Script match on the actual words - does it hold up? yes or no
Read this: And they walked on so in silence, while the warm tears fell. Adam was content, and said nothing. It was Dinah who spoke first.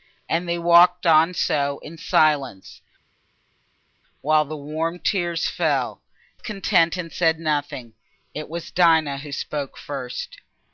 no